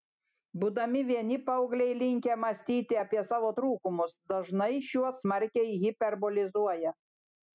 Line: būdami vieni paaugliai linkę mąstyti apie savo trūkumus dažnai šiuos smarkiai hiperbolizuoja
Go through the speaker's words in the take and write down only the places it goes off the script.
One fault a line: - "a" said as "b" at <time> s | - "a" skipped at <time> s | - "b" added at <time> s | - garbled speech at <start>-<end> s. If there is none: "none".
none